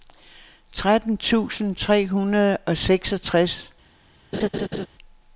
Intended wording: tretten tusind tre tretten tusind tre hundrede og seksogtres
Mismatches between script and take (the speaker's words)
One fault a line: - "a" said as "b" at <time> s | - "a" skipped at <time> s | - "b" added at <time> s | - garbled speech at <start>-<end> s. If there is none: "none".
- "tretten tusind tre" skipped at 2.1 s